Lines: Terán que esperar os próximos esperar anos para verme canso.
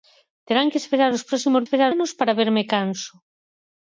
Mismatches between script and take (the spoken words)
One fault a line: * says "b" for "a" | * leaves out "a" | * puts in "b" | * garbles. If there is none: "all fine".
all fine